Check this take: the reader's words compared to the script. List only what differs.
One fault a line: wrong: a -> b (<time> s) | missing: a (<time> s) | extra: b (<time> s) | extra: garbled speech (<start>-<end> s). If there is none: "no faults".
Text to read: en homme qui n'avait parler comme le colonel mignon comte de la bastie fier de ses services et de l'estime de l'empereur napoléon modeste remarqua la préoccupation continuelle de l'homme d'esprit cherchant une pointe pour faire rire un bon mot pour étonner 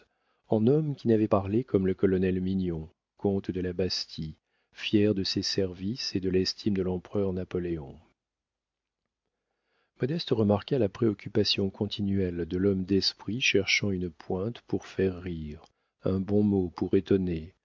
no faults